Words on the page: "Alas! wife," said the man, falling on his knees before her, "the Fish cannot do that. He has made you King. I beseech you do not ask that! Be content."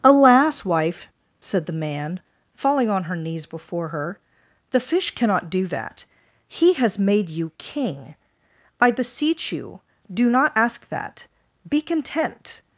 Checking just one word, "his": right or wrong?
wrong